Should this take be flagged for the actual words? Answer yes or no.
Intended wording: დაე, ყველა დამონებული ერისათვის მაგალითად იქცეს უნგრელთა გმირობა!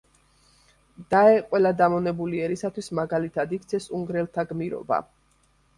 no